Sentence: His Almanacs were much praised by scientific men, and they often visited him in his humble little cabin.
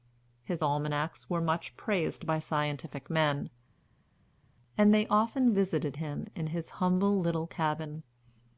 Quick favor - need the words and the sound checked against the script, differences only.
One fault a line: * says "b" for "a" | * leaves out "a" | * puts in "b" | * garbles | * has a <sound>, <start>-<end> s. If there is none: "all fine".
all fine